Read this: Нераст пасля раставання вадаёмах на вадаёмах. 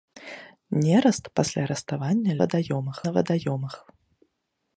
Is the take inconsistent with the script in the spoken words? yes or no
no